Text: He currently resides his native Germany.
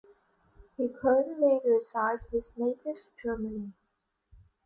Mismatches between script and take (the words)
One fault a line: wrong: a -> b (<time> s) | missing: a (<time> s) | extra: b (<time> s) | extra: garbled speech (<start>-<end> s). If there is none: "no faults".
no faults